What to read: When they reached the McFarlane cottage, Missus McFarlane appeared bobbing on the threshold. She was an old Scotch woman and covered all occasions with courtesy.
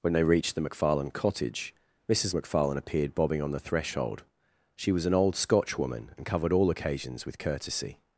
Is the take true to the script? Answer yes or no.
yes